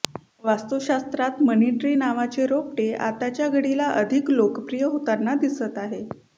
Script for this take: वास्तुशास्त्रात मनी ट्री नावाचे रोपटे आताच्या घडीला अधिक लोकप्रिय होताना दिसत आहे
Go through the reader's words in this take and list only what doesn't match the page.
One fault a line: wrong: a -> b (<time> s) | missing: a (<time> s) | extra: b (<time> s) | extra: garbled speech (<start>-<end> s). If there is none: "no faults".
no faults